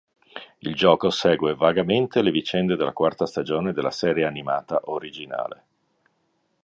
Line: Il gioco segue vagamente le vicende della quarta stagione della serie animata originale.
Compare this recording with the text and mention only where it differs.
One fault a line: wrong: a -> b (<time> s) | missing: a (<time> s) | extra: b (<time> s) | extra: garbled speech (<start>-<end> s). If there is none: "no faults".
no faults